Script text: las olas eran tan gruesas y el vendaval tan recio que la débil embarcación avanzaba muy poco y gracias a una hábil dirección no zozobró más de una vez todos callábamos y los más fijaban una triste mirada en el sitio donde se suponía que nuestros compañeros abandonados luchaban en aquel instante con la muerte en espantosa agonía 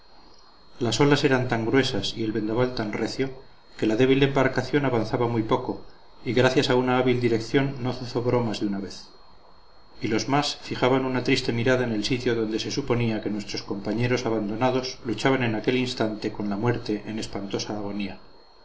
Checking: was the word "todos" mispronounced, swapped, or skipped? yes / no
yes